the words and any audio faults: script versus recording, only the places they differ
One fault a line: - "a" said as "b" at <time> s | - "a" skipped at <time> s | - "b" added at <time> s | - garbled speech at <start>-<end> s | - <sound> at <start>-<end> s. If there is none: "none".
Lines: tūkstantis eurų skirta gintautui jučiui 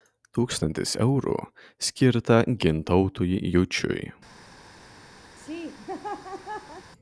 - laugh at 5.4-6.9 s